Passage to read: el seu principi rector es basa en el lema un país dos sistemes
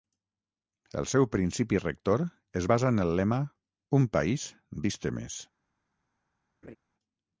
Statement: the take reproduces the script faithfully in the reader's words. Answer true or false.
false